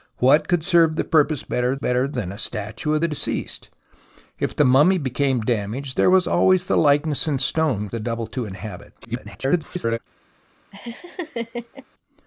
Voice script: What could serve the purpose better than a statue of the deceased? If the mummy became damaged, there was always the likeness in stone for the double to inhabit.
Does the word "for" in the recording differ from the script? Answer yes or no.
yes